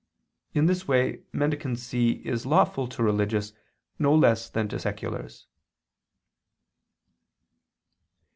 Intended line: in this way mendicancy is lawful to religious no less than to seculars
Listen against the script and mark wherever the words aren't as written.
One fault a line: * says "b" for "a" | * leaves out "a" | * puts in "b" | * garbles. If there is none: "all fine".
all fine